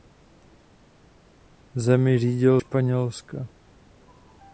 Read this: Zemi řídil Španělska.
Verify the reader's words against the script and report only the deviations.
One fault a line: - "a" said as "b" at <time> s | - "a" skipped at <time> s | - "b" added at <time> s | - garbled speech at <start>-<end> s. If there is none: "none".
none